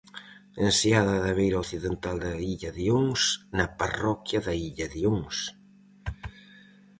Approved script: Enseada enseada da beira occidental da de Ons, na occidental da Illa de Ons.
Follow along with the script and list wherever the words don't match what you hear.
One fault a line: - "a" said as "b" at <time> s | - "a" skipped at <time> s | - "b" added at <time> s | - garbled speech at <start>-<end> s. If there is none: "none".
- "enseada" skipped at 1.1 s
- "illa" added at 2.5 s
- "occidental" said as "parroquia" at 3.8 s